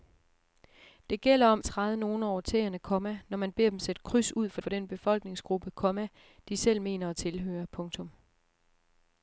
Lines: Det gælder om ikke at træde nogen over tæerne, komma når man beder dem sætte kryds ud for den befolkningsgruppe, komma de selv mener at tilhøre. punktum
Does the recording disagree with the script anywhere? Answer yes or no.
yes